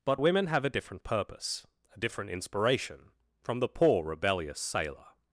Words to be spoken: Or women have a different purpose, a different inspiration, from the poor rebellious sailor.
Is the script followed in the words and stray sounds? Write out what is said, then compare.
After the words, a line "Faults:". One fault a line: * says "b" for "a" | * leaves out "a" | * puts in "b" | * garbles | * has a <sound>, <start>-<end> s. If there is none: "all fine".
But women have a different purpose, a different inspiration, from the poor rebellious sailor.
Faults:
* says "But" for "Or"